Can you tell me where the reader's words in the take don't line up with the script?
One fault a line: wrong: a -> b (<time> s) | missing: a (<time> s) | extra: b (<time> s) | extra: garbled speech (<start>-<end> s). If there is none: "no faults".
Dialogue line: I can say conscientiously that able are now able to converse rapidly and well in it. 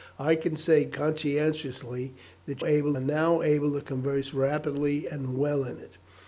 no faults